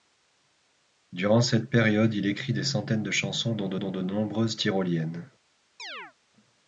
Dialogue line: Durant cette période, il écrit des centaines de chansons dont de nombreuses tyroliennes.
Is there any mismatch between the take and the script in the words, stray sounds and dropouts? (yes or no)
yes